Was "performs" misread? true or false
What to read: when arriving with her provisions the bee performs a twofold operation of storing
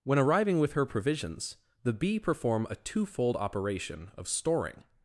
true